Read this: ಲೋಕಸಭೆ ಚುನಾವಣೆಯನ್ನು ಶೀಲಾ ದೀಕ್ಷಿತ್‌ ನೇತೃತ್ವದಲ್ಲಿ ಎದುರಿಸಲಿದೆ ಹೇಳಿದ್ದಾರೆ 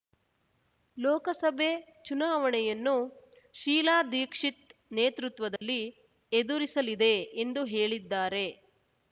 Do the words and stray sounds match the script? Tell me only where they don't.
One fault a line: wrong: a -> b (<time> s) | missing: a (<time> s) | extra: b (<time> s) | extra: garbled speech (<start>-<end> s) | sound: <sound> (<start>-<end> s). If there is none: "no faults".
sound: dropout (5.6-5.6 s)
extra: ಎಂದು (7.4 s)